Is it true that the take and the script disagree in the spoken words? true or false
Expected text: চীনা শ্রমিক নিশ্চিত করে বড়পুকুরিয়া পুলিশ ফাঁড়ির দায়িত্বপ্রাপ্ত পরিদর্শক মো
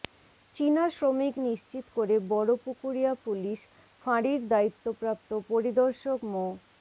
false